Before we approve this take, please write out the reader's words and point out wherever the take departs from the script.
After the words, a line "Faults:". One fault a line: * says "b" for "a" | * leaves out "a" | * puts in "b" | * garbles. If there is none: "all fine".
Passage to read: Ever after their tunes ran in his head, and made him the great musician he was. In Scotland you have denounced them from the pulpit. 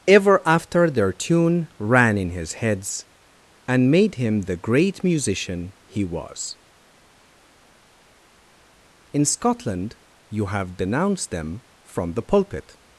Ever after their tune ran in his heads, and made him the great musician he was. In Scotland you have denounced them from the pulpit.
Faults:
* says "tune" for "tunes"
* says "heads" for "head"